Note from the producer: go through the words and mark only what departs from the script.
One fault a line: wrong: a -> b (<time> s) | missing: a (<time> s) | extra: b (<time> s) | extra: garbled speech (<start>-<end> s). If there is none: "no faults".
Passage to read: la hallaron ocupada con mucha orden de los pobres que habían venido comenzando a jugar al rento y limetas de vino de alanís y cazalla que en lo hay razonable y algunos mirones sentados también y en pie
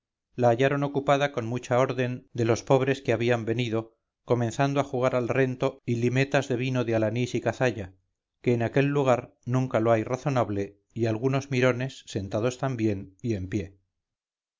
extra: aquel lugar nunca (8.6 s)